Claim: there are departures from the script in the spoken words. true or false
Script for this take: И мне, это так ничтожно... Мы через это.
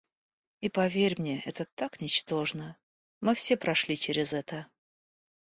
true